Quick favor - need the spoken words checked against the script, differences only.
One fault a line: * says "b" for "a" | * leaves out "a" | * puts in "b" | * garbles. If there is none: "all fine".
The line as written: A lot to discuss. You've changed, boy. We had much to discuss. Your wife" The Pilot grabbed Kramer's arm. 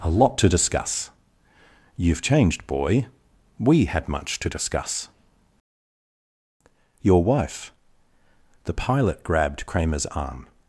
all fine